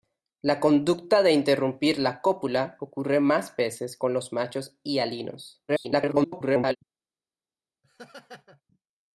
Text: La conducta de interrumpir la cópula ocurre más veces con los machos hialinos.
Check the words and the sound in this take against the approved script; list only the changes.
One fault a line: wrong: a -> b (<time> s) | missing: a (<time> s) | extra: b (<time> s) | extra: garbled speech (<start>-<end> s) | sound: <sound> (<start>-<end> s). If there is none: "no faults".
extra: garbled speech (5.7-6.8 s)
sound: laugh (7.8-8.6 s)